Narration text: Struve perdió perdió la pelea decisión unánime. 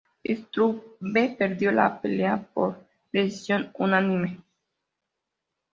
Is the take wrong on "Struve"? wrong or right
right